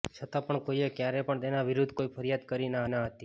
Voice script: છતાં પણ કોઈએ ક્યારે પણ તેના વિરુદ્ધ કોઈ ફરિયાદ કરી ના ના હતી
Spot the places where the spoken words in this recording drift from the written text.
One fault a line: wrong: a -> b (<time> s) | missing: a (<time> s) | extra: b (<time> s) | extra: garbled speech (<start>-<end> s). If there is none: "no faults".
no faults